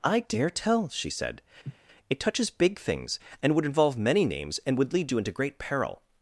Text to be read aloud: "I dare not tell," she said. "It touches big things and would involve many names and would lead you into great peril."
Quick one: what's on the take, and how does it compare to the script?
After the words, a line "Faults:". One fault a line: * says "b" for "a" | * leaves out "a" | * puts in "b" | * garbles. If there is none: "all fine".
"I dare tell," she said. "It touches big things and would involve many names and would lead you into great peril."
Faults:
* leaves out "not"